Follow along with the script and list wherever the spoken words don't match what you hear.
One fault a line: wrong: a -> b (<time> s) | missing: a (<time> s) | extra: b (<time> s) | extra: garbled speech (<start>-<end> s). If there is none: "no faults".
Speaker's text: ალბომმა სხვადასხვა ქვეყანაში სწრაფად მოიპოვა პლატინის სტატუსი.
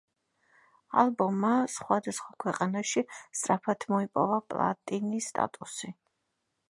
no faults